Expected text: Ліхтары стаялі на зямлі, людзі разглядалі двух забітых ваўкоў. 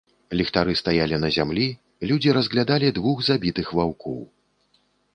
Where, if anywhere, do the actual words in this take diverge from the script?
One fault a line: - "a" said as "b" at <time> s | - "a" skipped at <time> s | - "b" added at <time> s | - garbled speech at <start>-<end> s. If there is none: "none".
none